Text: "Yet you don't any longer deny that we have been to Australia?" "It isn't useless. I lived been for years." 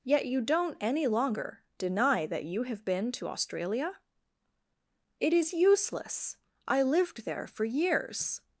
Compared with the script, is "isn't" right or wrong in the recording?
wrong